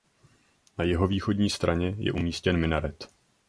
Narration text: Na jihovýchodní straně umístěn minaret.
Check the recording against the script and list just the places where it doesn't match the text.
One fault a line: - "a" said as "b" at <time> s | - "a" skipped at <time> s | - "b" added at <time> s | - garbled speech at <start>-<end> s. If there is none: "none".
- "je" added at 2.0 s